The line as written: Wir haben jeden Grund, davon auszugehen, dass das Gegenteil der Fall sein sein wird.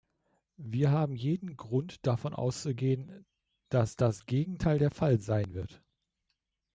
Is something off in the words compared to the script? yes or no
yes